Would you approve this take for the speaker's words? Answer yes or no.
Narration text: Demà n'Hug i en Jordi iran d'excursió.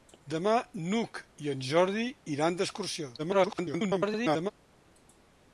no